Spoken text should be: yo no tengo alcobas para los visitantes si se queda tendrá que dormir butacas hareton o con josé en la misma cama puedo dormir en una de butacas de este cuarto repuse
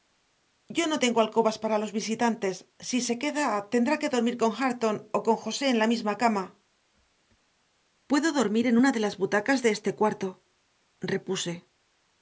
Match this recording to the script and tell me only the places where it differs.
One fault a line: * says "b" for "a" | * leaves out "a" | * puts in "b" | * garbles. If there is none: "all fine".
* says "con" for "butacas"
* puts in "las"